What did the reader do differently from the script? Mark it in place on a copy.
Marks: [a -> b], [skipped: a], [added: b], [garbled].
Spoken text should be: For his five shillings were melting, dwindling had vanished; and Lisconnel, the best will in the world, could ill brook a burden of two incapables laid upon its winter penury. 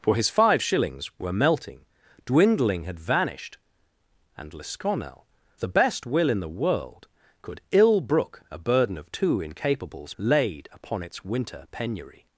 For his five shillings were melting, dwindling had vanished; and Lisconnel, the best will in the world, could ill brook a burden of two incapables laid upon its winter penury.